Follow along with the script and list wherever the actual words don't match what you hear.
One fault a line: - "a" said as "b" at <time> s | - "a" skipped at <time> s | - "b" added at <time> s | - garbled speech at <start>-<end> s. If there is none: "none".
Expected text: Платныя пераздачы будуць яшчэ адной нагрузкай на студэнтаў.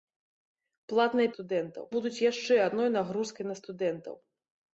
- "пераздачы" said as "студэнтаў" at 1.3 s